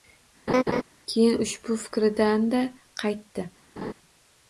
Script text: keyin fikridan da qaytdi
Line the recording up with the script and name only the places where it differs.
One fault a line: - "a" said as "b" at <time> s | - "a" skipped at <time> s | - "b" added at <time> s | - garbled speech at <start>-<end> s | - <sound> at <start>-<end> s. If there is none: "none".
- laugh at 0.5-0.8 s
- "ushbu" added at 1.4 s
- laugh at 3.8-3.9 s